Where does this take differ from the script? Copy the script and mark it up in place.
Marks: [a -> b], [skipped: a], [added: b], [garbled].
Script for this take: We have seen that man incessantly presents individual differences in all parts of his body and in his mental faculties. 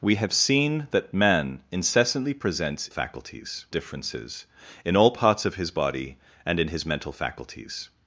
We have seen that man incessantly presents [individual -> faculties] differences in all parts of his body and in his mental faculties.